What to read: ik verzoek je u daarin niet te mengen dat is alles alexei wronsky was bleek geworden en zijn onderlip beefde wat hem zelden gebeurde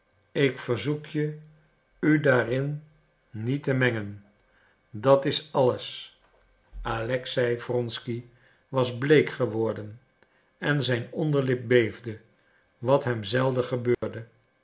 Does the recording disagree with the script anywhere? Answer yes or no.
no